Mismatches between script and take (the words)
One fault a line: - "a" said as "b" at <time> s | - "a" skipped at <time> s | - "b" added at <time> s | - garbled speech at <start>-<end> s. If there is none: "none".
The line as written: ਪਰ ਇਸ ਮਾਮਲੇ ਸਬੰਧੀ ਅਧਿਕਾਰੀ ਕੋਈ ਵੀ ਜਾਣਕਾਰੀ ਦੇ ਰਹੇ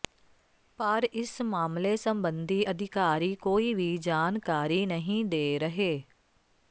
- "ਨਹੀਂ" added at 4.9 s